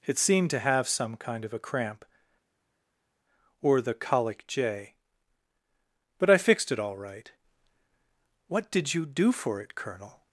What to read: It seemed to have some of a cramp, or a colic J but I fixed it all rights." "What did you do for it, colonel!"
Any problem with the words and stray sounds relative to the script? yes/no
yes